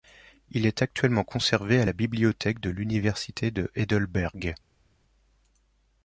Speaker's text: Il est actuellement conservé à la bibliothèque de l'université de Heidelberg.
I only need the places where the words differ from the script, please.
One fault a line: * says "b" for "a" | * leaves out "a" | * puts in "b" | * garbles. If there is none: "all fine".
all fine